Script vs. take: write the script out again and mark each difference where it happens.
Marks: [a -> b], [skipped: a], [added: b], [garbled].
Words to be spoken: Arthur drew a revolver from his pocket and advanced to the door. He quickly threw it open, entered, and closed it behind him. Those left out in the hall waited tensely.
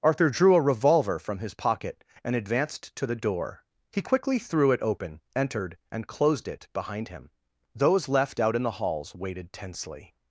Arthur drew a revolver from his pocket and advanced to the door. He quickly threw it open, entered, and closed it behind him. Those left out in the [hall -> halls] waited tensely.